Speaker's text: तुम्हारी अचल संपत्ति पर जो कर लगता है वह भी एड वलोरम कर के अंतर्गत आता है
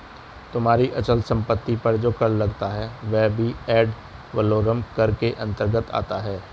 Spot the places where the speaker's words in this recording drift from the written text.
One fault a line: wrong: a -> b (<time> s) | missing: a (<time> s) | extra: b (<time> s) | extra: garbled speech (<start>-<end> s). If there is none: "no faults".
no faults